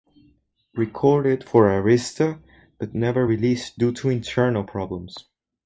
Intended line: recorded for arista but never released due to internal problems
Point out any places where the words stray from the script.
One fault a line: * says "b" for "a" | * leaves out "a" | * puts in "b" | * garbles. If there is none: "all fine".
all fine